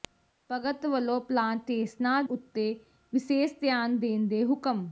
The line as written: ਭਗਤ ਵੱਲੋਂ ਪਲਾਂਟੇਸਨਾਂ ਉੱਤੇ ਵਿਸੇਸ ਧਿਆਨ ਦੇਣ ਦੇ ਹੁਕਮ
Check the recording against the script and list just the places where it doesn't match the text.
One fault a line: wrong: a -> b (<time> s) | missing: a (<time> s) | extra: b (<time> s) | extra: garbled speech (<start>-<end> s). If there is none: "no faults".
no faults